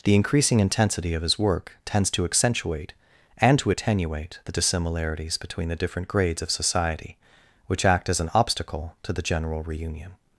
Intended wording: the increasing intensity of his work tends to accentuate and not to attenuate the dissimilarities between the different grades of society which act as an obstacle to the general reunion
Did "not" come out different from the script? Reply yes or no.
yes